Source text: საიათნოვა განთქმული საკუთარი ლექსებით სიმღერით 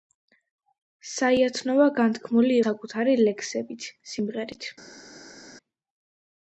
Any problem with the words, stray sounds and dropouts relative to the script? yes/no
no